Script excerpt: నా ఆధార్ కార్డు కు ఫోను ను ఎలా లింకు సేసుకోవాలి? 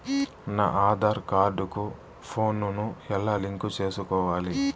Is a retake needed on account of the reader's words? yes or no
no